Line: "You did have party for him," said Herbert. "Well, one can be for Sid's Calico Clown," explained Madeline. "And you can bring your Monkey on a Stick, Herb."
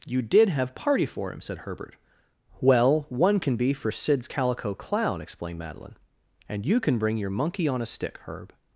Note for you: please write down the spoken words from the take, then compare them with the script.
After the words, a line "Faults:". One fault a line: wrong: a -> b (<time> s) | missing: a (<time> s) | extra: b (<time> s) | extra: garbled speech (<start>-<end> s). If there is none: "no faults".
"You did have party for him," said Herbert. "Well, one can be for Sid's Calico Clown," explained Madeline. "And you can bring your Monkey on a Stick, Herb."
Faults:
no faults